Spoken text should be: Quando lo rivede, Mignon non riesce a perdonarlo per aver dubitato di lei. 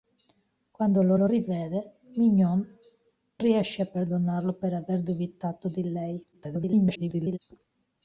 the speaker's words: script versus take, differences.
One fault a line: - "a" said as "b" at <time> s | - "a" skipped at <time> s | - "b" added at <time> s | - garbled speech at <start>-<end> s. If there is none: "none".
- "lo" added at 1.1 s
- "non" skipped at 2.7 s
- garbled speech at 6.3-7.4 s